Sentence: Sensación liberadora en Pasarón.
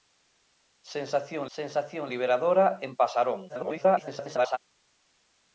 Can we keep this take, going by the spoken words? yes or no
no